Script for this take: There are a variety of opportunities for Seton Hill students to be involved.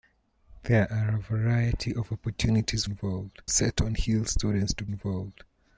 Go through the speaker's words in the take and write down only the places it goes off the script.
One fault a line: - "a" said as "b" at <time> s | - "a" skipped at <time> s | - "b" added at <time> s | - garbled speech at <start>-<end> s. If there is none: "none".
- "for" said as "involved" at 2.8 s
- "be" skipped at 4.9 s